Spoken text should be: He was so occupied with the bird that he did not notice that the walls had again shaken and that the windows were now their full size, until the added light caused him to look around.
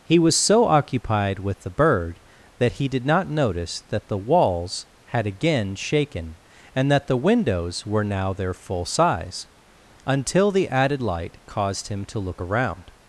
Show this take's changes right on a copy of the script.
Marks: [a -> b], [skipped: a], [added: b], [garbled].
He was so occupied with the bird that he did not notice that the walls had again shaken and that the windows were now their full size, until the added light caused him to look around.